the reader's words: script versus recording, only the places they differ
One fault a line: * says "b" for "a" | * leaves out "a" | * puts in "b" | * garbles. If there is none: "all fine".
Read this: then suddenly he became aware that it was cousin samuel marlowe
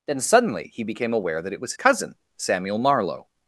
all fine